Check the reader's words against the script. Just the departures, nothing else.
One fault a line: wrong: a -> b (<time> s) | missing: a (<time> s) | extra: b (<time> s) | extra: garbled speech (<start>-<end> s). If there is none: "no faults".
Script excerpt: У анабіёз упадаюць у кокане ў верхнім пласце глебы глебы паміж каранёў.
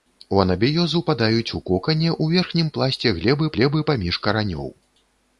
no faults